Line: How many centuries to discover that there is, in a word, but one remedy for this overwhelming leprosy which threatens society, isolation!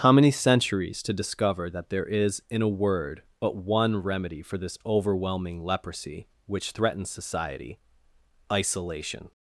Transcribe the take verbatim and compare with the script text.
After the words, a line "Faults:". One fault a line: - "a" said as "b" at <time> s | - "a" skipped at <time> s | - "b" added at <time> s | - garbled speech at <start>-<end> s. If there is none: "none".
How many centuries to discover that there is, in a word, but one remedy for this overwhelming leprosy which threatens society, isolation!
Faults:
none